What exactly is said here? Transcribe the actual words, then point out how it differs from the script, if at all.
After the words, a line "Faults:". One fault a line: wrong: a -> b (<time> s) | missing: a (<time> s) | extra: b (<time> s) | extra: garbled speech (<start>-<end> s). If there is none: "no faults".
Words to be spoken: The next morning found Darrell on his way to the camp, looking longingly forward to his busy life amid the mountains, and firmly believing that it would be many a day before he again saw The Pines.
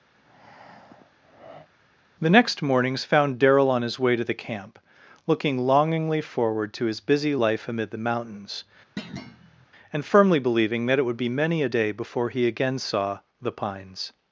The next mornings found Darrell on his way to the camp, looking longingly forward to his busy life amid the mountains, and firmly believing that it would be many a day before he again saw The Pines.
Faults:
wrong: morning -> mornings (2.6 s)